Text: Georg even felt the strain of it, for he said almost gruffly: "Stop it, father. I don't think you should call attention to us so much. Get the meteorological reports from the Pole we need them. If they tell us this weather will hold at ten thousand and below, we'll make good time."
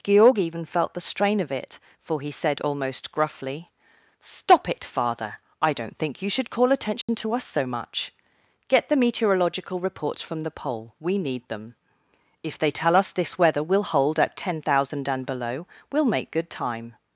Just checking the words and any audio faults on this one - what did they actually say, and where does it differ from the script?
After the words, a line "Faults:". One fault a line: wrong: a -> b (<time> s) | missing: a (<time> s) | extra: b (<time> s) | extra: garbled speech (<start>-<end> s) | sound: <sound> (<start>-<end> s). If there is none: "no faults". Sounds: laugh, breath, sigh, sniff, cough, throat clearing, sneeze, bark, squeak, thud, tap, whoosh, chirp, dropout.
Georg even felt the strain of it, for he said almost gruffly: "Stop it, father. I don't think you should call attention to us so much. Get the meteorological reports from the Pole we need them. If they tell us this weather will hold at ten thousand and below, we'll make good time."
Faults:
sound: dropout (7.0-7.1 s)